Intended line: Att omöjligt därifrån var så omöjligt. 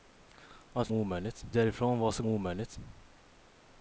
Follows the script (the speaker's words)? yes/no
yes